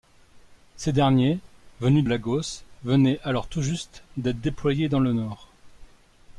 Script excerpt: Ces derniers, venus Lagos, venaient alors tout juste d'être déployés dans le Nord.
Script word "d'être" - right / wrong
right